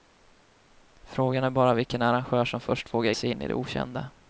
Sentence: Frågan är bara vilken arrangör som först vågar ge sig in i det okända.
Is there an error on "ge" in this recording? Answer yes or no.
yes